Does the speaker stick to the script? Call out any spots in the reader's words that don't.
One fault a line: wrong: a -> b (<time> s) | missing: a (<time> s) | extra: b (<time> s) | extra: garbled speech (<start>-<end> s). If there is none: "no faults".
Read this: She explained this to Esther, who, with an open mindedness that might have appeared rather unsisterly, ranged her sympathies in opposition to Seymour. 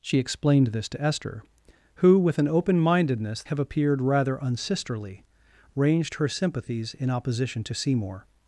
missing: that might (3.4 s)